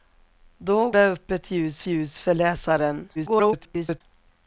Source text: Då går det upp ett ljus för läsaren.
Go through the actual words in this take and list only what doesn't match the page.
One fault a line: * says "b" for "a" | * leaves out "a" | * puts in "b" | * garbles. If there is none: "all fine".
* leaves out "går"
* puts in "ljus"
* garbles